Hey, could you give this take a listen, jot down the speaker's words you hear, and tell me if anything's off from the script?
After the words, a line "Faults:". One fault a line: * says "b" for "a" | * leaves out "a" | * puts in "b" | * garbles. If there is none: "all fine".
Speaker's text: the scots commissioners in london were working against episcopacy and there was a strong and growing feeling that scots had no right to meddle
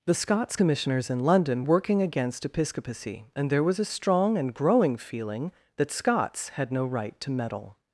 the scots commissioners in london working against episcopacy and there was a strong and growing feeling that scots had no right to meddle
Faults:
* leaves out "were"